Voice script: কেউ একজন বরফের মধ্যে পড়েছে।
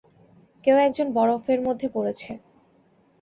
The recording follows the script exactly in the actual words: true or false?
true